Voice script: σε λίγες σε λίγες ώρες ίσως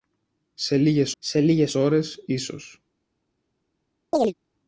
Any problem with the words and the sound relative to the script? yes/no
yes